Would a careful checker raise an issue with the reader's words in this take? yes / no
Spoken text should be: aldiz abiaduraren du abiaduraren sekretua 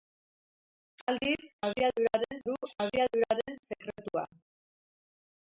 no